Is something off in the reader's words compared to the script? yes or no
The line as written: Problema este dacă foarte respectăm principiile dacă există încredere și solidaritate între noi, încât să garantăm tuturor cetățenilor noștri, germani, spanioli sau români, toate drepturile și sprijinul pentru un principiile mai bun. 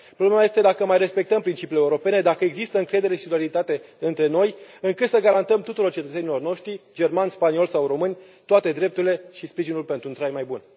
yes